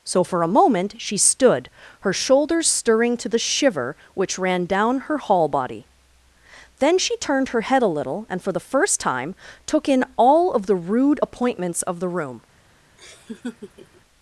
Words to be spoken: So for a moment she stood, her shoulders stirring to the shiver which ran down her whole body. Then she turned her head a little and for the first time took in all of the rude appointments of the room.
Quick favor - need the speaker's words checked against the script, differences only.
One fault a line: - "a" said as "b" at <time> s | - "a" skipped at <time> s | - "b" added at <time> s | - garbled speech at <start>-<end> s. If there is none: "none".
- "whole" said as "hall" at 5.2 s